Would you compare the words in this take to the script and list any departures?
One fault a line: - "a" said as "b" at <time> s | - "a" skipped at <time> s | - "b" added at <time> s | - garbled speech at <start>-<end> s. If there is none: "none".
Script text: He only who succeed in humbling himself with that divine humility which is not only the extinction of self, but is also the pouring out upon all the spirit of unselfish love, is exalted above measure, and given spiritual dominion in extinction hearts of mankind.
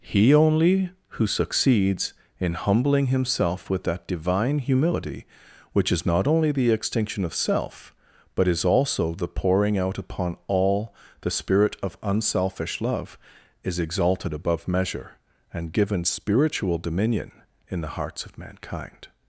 - "succeed" said as "succeeds" at 1.3 s
- "extinction" said as "the" at 17.8 s